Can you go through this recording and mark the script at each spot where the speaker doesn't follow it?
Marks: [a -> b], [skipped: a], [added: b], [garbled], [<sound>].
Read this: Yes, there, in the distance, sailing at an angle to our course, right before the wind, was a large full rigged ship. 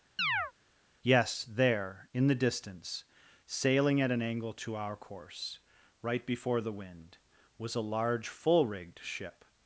[chirp] Yes, there, in the distance, sailing at an angle to our course, right before the wind, was a large full rigged ship.